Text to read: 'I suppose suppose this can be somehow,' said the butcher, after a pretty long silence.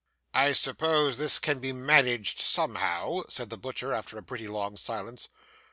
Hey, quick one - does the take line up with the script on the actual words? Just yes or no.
no